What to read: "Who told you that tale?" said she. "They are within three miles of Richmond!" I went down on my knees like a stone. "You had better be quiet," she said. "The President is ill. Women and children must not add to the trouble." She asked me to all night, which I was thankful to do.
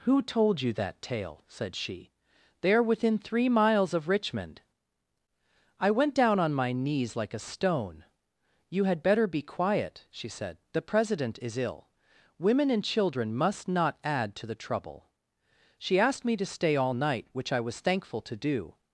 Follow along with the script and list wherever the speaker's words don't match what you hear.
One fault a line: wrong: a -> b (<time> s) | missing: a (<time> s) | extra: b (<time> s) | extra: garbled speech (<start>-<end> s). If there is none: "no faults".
extra: stay (16.5 s)